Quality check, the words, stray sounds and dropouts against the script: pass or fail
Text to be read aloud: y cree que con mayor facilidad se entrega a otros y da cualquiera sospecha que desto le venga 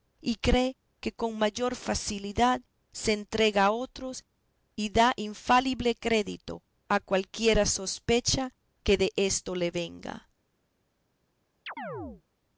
fail